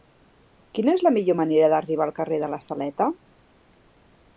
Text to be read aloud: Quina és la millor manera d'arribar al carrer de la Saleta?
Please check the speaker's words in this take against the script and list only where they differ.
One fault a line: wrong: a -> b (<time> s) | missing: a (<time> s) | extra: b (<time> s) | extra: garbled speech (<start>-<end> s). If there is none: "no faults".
no faults